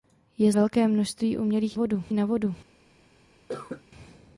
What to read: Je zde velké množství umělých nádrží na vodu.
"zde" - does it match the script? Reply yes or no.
no